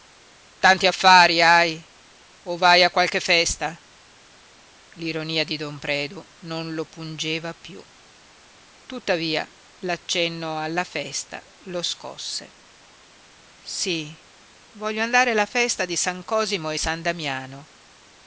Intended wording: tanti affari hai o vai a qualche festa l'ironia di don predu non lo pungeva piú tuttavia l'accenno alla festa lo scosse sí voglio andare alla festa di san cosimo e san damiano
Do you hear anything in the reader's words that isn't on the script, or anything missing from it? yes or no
no